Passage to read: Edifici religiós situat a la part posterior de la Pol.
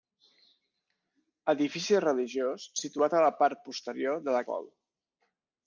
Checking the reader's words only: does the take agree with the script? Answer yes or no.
yes